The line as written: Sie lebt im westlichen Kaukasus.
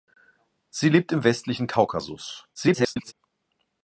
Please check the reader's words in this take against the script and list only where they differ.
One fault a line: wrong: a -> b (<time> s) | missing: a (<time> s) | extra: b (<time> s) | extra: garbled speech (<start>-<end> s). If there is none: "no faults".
extra: garbled speech (2.5-3.1 s)